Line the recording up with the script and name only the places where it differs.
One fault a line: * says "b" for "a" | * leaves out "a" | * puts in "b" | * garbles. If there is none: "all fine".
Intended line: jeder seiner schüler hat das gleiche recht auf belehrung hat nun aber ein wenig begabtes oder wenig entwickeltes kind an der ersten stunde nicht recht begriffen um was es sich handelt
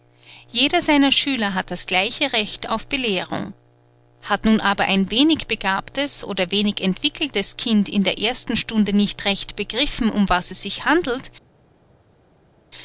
* says "in" for "an"